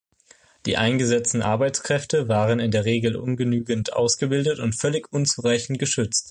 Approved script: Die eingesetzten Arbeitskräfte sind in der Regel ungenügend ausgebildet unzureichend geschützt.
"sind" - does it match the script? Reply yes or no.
no